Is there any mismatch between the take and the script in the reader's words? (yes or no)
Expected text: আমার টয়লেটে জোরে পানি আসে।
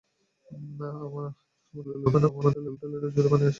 yes